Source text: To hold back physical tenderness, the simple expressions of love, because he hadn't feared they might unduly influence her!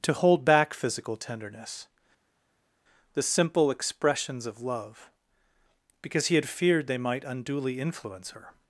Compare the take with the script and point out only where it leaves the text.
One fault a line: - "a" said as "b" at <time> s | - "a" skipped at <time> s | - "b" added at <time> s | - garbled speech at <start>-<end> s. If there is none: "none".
- "hadn't" said as "had" at 6.4 s